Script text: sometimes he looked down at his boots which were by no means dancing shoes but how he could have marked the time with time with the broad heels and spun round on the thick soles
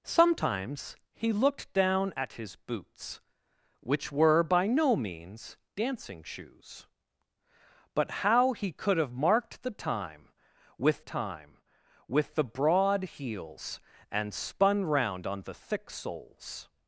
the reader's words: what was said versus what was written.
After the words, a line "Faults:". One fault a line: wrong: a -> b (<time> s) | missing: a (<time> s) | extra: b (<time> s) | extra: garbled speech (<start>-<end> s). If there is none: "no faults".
sometimes he looked down at his boots which were by no means dancing shoes but how he could have marked the time with time with the broad heels and spun round on the thick soles
Faults:
no faults